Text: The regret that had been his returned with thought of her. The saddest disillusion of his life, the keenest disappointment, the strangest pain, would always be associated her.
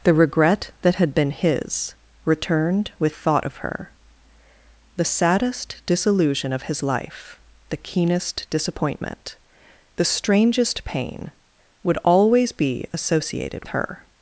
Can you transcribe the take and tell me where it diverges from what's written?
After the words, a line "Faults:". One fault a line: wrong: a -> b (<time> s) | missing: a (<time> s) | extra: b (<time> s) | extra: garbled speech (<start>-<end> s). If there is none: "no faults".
The regret that had been his returned with thought of her. The saddest disillusion of his life, the keenest disappointment, the strangest pain, would always be associated her.
Faults:
no faults